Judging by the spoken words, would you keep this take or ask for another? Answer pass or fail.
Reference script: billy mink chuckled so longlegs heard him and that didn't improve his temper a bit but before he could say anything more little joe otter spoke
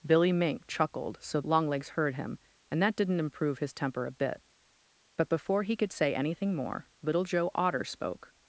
pass